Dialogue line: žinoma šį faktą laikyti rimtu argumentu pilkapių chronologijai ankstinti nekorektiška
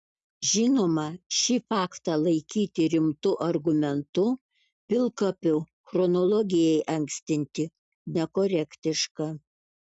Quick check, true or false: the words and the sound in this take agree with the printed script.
true